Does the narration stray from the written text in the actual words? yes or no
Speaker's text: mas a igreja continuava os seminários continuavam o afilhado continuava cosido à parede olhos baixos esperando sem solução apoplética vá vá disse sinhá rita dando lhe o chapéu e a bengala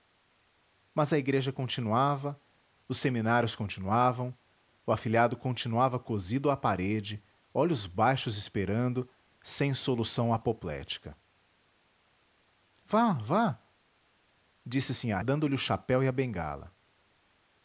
yes